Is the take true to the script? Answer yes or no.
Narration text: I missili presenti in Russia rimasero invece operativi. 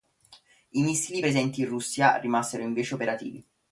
yes